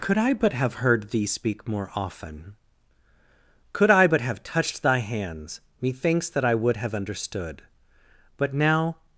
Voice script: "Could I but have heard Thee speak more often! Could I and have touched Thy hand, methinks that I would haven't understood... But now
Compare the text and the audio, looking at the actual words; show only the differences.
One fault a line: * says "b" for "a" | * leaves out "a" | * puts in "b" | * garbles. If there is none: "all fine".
* says "but" for "and"
* says "hands" for "hand"
* says "have" for "haven't"